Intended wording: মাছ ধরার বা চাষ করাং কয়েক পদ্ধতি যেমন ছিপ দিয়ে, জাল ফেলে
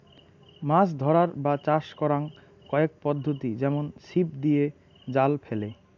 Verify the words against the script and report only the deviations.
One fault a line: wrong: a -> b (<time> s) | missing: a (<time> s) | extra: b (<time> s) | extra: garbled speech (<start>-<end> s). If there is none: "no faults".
no faults